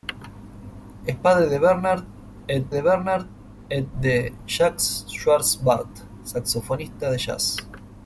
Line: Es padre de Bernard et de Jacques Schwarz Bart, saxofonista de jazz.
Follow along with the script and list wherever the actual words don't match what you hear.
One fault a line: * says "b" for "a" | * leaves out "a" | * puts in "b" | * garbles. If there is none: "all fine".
* puts in "Bernard et de"